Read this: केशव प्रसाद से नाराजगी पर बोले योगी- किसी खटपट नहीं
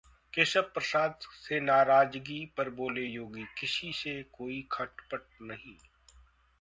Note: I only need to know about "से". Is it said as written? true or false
true